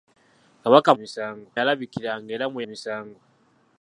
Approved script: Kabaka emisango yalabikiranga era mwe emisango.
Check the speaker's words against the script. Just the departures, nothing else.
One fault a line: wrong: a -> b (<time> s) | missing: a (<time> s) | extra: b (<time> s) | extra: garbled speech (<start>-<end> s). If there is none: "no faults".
no faults